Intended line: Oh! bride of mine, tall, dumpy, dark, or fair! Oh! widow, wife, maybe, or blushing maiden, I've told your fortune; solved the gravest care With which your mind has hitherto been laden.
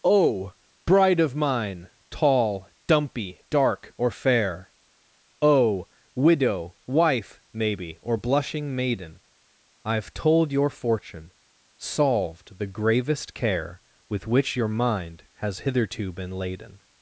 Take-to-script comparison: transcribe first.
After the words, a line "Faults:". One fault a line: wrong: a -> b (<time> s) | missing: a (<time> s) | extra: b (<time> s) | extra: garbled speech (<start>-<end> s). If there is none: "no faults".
Oh! bride of mine, tall, dumpy, dark, or fair! Oh! widow, wife, maybe, or blushing maiden, I've told your fortune; solved the gravest care With which your mind has hitherto been laden.
Faults:
no faults